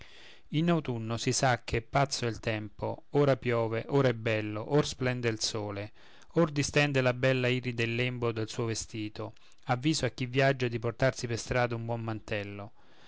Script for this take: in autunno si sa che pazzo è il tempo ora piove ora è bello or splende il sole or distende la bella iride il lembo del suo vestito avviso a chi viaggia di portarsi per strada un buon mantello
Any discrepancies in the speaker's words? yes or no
no